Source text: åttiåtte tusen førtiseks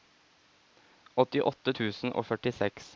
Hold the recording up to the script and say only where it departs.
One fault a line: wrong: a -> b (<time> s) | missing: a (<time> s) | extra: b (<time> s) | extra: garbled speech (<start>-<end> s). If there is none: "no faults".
extra: og (2.1 s)